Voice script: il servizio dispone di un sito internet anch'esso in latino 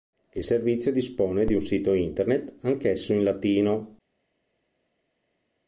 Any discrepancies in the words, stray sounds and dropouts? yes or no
no